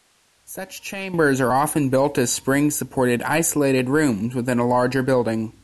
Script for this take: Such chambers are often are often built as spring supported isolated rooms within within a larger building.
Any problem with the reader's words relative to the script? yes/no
yes